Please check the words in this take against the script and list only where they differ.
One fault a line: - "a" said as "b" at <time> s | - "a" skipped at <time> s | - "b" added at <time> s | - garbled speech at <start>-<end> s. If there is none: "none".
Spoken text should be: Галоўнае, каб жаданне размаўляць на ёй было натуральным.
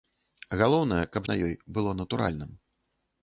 - "жаданне размаўляць" skipped at 1.3 s